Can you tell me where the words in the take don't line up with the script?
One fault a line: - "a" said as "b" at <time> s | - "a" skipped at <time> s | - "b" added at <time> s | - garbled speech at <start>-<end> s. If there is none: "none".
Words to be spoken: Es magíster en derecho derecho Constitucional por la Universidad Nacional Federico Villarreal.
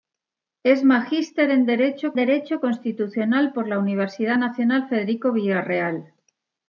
none